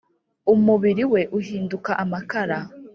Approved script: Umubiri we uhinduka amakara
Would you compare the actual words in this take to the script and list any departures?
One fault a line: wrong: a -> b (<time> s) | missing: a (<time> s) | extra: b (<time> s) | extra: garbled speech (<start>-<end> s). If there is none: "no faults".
no faults